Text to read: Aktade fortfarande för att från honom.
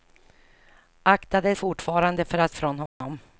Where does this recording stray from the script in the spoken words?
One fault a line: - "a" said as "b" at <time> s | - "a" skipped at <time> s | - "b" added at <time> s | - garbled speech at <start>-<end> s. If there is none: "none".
none